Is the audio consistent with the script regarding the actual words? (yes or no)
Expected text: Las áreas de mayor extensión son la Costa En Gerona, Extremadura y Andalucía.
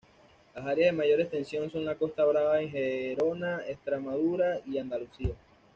no